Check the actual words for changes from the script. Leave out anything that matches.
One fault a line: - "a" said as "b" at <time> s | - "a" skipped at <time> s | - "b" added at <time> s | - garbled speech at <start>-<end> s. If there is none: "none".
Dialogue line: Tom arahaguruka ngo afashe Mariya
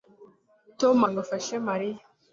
- "arahaguruka" skipped at 1.0 s